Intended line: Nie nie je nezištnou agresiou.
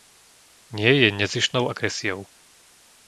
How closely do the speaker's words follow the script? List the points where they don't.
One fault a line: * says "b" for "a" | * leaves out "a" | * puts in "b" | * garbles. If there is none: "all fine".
* leaves out "nie"